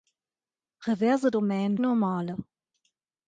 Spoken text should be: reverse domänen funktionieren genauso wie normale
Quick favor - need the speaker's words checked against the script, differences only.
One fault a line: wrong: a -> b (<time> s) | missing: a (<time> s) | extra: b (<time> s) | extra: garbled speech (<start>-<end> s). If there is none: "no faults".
missing: funktionieren genauso wie (1.8 s)